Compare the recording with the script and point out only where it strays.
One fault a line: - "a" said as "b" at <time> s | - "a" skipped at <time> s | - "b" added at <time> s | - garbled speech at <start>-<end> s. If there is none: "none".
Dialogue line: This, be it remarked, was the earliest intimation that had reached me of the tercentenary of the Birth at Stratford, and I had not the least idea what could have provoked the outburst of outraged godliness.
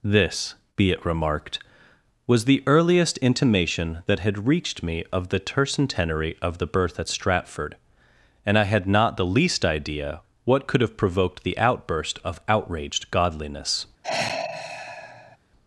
none